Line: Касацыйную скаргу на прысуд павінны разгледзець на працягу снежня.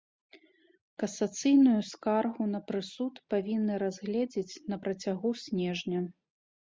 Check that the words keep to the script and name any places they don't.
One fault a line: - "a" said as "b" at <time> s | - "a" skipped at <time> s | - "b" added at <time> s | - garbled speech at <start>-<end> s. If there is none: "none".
none